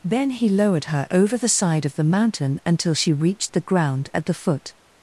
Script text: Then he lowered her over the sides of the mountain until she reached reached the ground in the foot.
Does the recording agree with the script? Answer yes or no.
no